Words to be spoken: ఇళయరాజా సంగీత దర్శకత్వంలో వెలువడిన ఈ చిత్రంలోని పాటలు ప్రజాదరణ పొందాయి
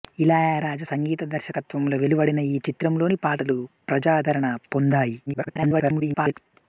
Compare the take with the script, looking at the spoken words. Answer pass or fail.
fail